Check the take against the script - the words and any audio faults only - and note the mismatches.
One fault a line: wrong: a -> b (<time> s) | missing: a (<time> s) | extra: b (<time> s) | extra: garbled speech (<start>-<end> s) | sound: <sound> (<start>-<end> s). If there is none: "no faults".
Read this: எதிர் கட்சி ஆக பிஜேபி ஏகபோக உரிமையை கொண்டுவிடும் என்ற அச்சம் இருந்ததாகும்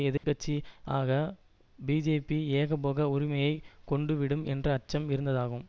sound: dropout (0.2-0.2 s)